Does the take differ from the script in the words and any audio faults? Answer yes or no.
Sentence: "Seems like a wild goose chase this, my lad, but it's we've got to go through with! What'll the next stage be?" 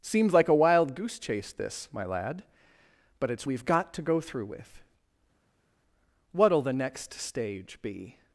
no